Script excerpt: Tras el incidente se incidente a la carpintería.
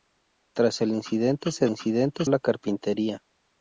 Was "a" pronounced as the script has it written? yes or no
yes